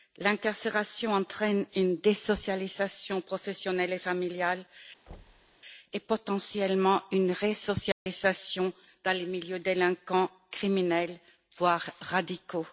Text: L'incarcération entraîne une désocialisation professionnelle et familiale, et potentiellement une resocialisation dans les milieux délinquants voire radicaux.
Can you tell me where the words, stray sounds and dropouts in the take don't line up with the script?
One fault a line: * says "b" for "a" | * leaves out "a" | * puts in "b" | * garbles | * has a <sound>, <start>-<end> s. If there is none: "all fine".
* has a thud, 5.1-5.6 s
* has a dropout, 7.9-8.1 s
* puts in "criminels"